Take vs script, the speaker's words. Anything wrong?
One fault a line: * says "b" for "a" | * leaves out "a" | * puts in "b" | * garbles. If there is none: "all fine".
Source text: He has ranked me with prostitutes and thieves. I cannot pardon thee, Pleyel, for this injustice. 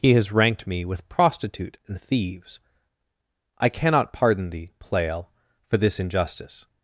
* says "prostitute" for "prostitutes"